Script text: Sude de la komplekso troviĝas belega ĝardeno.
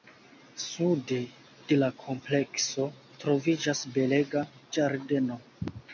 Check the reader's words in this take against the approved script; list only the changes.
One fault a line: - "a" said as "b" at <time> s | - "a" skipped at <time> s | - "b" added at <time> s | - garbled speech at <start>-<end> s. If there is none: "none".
none